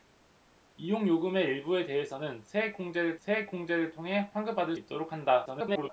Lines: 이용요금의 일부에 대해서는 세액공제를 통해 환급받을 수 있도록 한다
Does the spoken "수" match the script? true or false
false